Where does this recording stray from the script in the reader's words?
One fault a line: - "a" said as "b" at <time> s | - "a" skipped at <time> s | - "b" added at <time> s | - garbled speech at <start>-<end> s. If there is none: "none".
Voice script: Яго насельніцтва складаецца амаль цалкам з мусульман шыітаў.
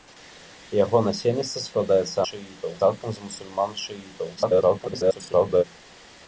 - "амаль" said as "шыітаў" at 2.3 s
- garbled speech at 4.4-5.6 s